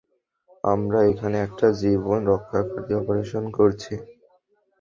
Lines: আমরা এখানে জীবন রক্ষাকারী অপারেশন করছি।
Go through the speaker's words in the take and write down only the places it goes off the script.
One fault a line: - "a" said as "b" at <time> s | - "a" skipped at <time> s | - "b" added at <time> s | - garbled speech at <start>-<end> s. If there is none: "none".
- "একটা" added at 1.5 s